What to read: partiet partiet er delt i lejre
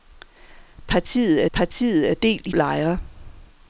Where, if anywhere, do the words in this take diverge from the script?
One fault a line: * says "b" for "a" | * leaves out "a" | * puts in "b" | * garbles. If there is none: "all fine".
all fine